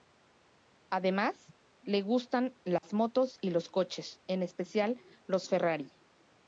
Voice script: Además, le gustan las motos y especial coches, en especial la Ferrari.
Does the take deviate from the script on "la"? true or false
true